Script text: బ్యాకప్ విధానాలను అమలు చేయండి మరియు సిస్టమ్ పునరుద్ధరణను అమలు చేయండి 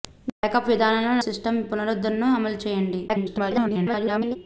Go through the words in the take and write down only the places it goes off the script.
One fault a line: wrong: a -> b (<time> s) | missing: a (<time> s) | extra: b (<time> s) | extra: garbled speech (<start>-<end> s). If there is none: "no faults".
missing: అమలు చేయండి మరియు (1.2 s)
extra: garbled speech (3.1-4.4 s)